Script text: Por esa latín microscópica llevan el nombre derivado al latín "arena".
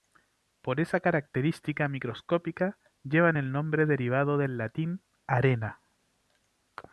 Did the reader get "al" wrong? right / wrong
wrong